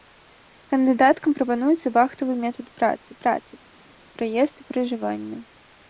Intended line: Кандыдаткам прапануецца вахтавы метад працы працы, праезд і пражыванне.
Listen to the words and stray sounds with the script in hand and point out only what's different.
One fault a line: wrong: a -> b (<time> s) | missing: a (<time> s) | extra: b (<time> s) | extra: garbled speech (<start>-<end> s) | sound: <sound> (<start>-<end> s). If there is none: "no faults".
no faults